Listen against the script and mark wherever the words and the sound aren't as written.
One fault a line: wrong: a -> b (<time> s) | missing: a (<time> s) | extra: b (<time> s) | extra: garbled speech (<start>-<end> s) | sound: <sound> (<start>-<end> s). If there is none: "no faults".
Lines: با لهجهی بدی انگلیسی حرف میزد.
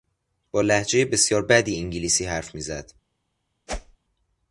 extra: بسیار (1.0 s)
sound: whoosh (3.7-4.0 s)